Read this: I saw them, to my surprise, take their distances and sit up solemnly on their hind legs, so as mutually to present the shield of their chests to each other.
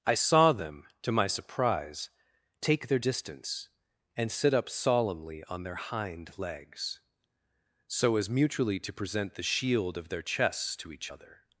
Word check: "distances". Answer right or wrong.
wrong